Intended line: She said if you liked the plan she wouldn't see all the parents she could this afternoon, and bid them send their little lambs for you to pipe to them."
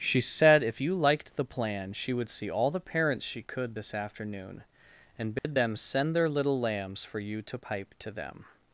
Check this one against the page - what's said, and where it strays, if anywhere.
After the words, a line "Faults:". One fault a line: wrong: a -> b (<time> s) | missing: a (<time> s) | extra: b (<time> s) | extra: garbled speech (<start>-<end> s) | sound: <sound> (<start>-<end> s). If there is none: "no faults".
She said if you liked the plan she would see all the parents she could this afternoon, and bid them send their little lambs for you to pipe to them."
Faults:
wrong: wouldn't -> would (2.1 s)
sound: dropout (5.4-5.4 s)